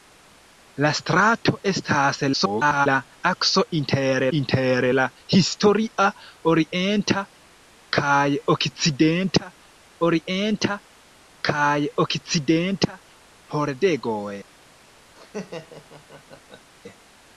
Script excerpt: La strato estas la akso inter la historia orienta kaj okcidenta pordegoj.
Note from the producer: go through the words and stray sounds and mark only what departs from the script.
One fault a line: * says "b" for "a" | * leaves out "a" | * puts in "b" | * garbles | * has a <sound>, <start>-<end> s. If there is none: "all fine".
* garbles
* puts in "inter"
* puts in "orienta kaj okcidenta"
* has a laugh, 15.1-16.7 s